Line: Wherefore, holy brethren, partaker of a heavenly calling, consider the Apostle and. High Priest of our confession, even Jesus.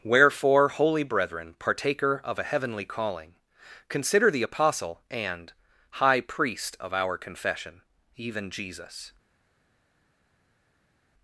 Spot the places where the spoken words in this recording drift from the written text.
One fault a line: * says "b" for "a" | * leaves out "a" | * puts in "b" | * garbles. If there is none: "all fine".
all fine